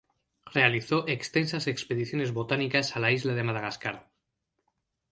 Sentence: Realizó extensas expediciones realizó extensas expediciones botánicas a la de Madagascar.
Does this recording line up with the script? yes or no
no